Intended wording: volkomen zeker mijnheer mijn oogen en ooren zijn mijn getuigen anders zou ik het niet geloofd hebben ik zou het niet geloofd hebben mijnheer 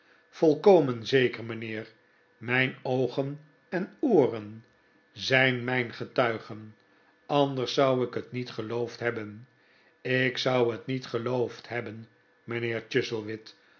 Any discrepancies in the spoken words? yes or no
no